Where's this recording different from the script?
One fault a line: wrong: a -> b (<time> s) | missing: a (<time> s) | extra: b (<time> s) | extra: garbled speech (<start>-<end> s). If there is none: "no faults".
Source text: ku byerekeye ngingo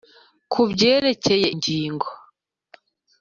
no faults